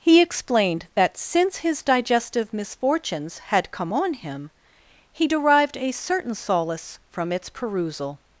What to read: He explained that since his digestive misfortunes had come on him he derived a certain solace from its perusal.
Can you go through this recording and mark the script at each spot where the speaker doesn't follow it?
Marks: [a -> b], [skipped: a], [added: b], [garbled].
He explained that since his digestive misfortunes had come on him he derived a certain solace from its perusal.